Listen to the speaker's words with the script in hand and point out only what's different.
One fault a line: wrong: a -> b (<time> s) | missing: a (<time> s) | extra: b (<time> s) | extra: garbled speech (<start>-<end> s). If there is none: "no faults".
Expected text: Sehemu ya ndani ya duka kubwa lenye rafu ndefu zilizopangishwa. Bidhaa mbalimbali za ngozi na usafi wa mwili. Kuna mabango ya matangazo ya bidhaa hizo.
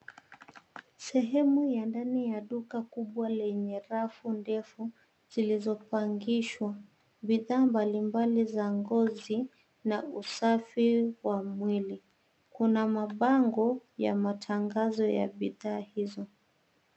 no faults